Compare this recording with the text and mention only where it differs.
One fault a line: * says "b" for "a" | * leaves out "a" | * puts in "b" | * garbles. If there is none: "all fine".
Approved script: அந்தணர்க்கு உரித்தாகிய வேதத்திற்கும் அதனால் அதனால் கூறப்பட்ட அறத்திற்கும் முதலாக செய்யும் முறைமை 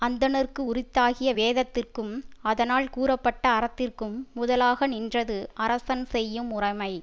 * leaves out "அதனால்"
* puts in "நின்றது அரசன்"